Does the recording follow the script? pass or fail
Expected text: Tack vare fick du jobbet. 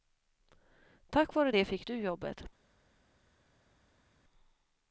fail